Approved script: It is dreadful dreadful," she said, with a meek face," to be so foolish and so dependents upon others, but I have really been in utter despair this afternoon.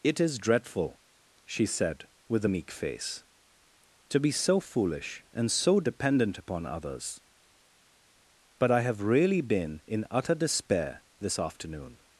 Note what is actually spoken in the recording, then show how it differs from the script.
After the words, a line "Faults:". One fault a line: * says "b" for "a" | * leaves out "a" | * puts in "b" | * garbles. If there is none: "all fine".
It is dreadful," she said, with a meek face," to be so foolish and so dependent upon others, but I have really been in utter despair this afternoon.
Faults:
* leaves out "dreadful"
* says "dependent" for "dependents"